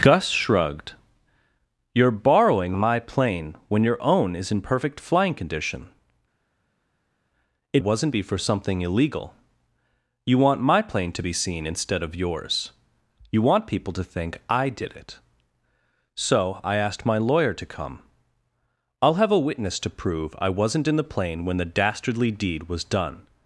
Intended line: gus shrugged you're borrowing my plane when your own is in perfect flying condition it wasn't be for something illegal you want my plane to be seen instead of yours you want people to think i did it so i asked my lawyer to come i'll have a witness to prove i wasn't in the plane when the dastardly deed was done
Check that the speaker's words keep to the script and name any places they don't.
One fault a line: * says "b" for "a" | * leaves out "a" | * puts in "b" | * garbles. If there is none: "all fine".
all fine